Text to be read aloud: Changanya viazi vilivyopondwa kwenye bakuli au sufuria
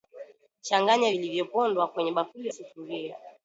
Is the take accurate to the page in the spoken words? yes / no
no